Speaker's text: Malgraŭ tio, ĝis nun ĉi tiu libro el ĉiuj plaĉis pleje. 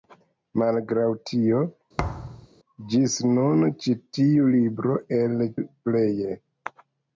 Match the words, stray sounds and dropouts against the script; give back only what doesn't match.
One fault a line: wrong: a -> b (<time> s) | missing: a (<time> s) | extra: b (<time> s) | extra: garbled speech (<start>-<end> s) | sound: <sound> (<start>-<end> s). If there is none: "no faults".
sound: thud (2.0-2.5 s)
missing: ĉiuj plaĉis (5.4 s)